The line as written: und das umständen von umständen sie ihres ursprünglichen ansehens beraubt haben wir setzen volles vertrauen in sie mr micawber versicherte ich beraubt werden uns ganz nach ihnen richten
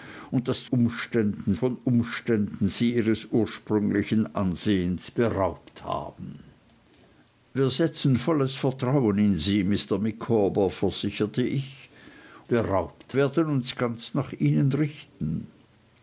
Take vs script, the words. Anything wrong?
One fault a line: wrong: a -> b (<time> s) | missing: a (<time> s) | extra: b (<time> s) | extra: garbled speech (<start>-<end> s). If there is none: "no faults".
no faults